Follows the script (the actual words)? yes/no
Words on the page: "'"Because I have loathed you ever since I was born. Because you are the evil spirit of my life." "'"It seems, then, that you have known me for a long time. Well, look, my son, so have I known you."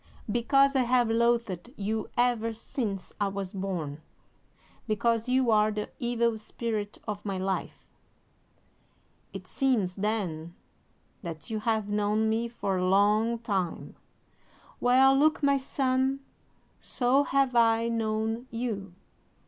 yes